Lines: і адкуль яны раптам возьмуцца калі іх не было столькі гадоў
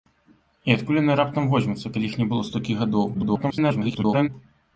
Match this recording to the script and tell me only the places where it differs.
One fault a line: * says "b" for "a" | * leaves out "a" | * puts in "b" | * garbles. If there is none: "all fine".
* garbles